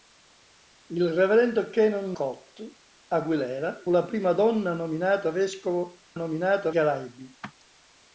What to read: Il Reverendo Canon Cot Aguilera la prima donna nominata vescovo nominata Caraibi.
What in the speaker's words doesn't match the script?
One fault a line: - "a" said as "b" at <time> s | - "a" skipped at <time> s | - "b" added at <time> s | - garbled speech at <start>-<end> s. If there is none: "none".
none